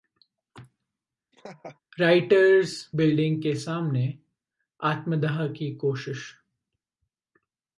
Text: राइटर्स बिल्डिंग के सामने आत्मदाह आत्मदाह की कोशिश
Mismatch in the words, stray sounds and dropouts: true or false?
true